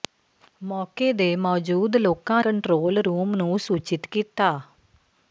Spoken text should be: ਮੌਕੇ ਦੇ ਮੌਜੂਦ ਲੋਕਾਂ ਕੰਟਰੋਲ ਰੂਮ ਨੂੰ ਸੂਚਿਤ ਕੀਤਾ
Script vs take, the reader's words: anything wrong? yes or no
no